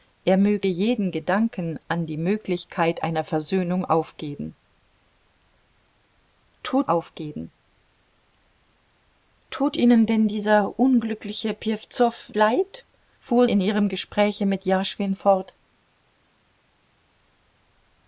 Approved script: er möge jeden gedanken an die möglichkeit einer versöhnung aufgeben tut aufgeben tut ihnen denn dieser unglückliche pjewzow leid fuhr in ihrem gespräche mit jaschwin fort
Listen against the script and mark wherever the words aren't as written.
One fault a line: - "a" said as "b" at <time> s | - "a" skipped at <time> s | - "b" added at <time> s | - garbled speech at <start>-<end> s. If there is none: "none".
none